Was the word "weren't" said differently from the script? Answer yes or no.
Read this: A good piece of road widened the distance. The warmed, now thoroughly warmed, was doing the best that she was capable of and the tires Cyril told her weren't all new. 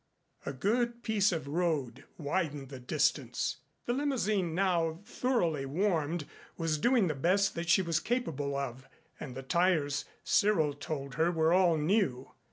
yes